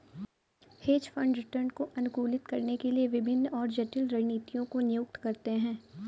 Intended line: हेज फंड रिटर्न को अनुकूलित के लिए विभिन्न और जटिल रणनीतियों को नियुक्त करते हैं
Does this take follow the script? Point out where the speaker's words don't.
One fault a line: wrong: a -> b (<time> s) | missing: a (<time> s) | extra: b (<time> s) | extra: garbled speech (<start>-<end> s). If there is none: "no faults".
extra: करने (2.5 s)